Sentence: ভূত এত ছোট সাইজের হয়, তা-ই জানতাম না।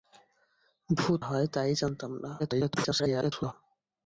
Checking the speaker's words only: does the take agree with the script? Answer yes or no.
no